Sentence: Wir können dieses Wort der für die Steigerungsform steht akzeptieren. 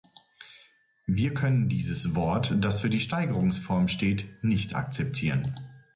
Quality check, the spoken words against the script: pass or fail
fail